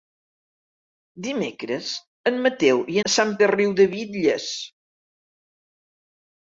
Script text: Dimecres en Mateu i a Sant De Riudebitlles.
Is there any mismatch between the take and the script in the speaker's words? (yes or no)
no